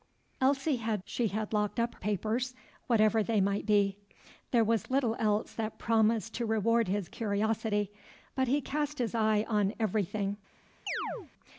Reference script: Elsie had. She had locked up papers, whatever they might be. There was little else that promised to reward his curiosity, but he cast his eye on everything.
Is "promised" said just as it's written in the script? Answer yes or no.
yes